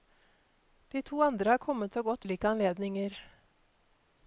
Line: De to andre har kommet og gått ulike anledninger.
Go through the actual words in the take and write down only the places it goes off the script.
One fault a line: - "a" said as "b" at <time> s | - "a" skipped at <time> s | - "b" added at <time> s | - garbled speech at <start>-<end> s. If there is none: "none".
none